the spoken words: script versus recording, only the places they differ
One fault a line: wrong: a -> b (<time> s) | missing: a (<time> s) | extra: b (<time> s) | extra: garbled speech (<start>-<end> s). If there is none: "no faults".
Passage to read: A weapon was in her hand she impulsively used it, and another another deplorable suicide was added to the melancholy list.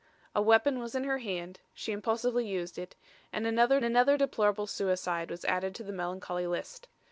no faults